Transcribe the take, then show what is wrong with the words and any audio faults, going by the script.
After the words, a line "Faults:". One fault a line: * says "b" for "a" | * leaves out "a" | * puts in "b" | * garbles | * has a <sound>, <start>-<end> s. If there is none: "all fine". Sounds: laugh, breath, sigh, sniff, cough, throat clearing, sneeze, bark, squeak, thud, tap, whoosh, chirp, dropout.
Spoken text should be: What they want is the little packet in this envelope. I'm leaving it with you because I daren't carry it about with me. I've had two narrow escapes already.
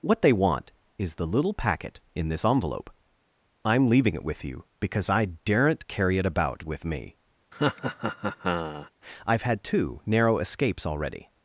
What they want is the little packet in this envelope. I'm leaving it with you because I daren't carry it about with me. I've had two narrow escapes already.
Faults:
* has a laugh, 7.5-8.9 s